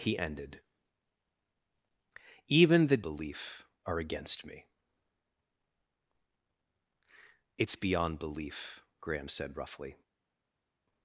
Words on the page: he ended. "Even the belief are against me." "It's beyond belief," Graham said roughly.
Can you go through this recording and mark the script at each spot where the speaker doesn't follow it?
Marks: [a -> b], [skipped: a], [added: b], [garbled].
he ended. "Even the belief are against me." "It's beyond belief," Graham said roughly.